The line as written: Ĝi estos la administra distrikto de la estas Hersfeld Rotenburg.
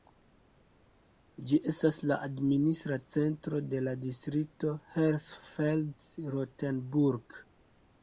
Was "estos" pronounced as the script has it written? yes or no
no